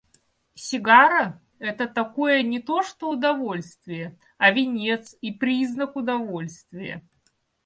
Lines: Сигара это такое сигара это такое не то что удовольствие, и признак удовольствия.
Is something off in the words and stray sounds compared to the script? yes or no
yes